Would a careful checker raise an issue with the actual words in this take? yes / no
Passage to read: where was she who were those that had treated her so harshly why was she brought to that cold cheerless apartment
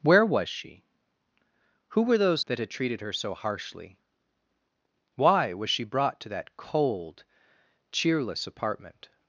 no